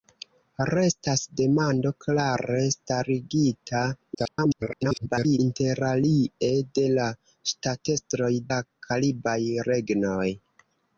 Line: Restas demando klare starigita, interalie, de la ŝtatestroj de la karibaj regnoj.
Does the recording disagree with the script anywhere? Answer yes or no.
yes